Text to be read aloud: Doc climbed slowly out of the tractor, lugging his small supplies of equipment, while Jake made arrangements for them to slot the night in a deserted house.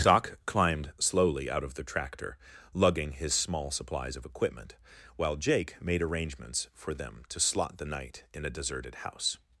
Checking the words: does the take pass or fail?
pass